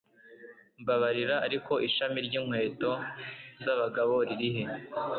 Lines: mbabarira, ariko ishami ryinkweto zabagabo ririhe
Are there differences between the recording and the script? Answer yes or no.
no